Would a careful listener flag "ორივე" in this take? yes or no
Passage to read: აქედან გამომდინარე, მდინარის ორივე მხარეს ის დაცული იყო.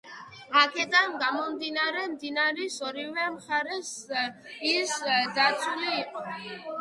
no